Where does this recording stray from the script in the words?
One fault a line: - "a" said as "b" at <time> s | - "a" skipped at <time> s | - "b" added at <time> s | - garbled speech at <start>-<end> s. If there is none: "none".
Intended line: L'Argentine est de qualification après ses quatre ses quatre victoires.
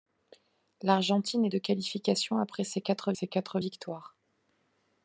none